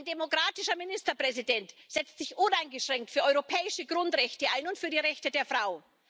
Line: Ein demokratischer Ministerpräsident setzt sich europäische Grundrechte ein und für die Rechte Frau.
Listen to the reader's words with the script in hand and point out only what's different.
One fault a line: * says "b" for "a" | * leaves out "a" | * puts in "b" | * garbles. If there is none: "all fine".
* puts in "uneingeschränkt für"
* puts in "der"